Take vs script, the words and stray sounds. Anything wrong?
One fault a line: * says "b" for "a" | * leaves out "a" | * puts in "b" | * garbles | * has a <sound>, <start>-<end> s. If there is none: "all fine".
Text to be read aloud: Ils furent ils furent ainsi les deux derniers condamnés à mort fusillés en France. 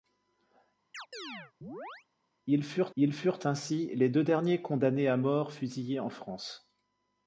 * has a chirp, 0.9-2.1 s